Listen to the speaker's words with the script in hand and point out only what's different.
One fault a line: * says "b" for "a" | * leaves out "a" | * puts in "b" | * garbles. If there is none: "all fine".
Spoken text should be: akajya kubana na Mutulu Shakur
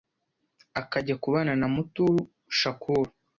all fine